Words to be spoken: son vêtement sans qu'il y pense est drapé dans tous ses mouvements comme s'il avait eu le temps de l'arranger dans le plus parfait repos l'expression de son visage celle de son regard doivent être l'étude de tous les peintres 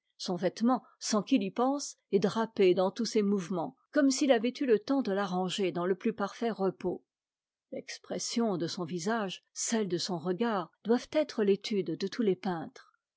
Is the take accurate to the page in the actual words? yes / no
yes